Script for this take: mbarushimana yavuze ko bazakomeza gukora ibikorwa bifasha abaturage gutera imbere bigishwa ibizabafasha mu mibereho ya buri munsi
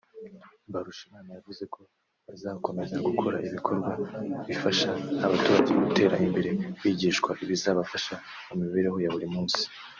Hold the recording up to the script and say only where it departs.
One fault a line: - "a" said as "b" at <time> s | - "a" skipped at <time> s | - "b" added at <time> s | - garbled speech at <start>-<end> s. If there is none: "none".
none